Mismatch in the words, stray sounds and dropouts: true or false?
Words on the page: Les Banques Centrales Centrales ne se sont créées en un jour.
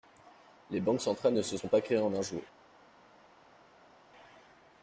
true